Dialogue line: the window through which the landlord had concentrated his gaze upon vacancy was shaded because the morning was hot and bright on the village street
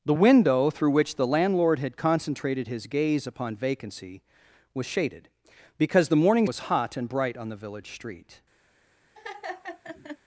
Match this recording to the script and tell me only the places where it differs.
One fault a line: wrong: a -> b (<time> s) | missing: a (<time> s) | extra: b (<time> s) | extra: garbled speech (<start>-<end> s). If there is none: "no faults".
no faults